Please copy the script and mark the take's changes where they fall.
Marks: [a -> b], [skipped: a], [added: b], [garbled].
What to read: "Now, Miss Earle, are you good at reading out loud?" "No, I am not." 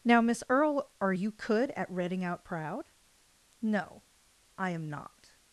"Now, Miss Earle, are you [good -> could] at reading out [loud?" -> proud] "No, I am not."